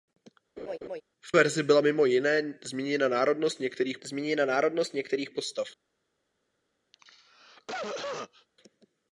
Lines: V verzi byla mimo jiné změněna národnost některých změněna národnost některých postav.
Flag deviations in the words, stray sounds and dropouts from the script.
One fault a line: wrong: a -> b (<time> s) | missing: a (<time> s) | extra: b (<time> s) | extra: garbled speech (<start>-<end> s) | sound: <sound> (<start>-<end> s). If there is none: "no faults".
sound: laugh (0.6-1.0 s)
sound: cough (6.9-8.5 s)